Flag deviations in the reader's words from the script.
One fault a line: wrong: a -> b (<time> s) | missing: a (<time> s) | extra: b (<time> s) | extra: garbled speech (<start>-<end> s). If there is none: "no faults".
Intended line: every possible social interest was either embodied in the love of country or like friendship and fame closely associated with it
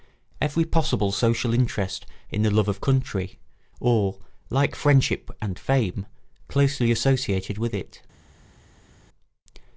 missing: was either embodied (2.1 s)